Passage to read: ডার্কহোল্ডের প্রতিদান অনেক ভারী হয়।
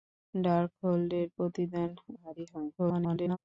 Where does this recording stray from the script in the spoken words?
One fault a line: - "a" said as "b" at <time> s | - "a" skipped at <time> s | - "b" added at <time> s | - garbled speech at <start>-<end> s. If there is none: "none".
- "অনেক" skipped at 1.9 s
- garbled speech at 2.8-3.4 s